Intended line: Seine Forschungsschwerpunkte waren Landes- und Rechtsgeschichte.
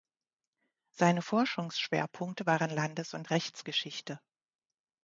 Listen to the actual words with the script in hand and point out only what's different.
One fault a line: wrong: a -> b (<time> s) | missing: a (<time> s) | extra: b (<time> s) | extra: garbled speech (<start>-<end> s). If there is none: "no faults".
no faults